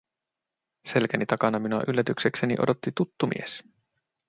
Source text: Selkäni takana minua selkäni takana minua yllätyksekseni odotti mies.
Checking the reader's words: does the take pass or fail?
fail